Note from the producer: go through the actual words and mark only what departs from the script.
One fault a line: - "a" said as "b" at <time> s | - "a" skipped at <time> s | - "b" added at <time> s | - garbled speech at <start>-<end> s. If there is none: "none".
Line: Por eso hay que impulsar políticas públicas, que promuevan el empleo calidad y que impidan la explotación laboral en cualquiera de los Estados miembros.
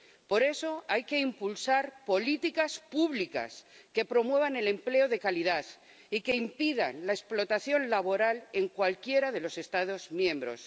- "de" added at 5.1 s